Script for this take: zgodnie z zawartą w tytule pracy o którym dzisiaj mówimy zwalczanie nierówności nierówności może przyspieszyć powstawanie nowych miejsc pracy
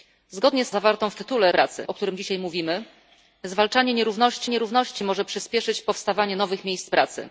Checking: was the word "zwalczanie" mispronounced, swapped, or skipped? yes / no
no